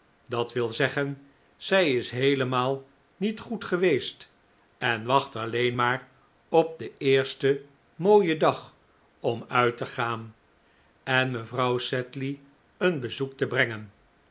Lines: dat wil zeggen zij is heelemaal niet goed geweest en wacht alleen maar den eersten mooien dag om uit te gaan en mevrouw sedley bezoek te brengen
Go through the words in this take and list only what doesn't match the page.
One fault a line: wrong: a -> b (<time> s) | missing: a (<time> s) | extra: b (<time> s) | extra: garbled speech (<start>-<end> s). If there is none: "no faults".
extra: op (6.5 s)
extra: een (12.8 s)